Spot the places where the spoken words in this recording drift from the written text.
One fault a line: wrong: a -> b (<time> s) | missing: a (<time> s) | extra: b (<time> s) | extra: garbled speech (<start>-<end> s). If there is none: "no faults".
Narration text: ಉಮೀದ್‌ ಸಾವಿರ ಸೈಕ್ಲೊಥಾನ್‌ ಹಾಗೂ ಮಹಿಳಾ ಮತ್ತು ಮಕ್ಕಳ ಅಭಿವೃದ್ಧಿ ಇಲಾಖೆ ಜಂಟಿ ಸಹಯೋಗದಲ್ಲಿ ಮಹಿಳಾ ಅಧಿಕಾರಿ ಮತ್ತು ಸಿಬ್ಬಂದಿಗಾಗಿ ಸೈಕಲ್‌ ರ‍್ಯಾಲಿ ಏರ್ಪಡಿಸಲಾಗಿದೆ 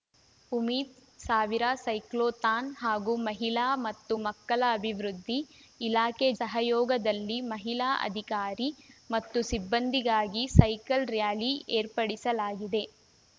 missing: ಜಂಟಿ (6.3 s)